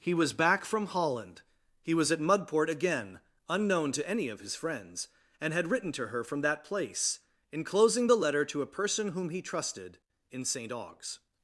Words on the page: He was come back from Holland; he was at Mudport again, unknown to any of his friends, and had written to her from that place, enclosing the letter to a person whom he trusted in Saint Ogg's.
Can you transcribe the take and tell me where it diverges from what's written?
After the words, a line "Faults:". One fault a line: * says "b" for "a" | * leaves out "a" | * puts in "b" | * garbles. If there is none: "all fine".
He was back from Holland; he was at Mudport again, unknown to any of his friends, and had written to her from that place, enclosing the letter to a person whom he trusted in Saint Ogg's.
Faults:
* leaves out "come"